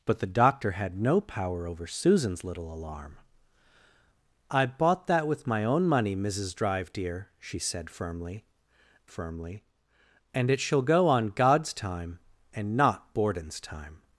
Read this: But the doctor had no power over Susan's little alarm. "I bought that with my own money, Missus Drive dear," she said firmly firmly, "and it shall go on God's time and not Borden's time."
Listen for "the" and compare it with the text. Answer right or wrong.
right